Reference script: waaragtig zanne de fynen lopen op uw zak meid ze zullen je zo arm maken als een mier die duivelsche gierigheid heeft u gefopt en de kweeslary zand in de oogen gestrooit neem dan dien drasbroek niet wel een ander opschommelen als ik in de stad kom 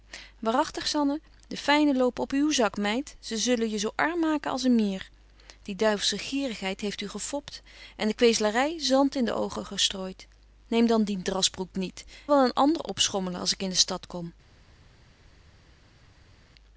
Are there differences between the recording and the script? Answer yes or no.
no